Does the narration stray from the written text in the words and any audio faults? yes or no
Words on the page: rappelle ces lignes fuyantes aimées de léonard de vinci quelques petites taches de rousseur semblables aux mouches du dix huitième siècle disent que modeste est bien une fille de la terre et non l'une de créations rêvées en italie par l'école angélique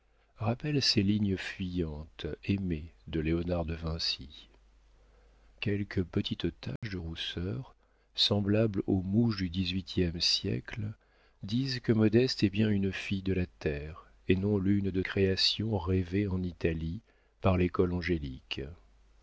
yes